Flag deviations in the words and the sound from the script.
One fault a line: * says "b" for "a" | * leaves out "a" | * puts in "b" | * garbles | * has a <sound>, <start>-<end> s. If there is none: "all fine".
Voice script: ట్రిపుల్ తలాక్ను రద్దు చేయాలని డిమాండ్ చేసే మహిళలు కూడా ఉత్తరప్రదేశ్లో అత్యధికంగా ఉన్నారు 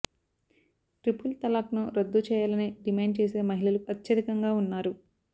* leaves out "కూడా ఉత్తరప్రదేశ్లో"